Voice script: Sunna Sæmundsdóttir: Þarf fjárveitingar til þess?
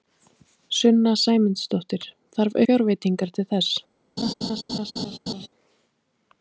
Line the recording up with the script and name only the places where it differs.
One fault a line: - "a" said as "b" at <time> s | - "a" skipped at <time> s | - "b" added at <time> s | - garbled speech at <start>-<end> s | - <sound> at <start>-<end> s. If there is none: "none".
- laugh at 4.2-5.5 s